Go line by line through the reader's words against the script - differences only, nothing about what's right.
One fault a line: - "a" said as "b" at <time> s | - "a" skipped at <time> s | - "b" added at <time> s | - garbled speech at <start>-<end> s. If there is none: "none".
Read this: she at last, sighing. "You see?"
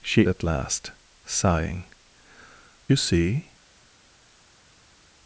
none